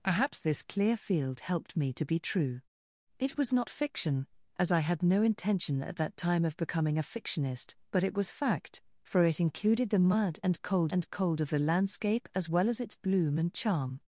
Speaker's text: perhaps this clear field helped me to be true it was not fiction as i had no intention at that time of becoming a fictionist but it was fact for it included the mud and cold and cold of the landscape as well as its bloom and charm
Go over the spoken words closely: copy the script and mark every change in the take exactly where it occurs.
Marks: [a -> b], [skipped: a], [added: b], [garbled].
perhaps this clear field helped me to be true it was not fiction as i had no intention at that time of becoming a fictionist but it was fact for it included the mud and cold and cold of the landscape as well as its bloom and charm